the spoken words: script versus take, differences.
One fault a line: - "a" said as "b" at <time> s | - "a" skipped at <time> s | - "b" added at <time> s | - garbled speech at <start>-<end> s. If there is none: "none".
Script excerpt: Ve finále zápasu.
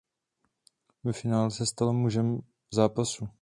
- "se stal mužem" added at 1.5 s